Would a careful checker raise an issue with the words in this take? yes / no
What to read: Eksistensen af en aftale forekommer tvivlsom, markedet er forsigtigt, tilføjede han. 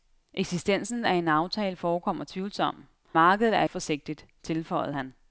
no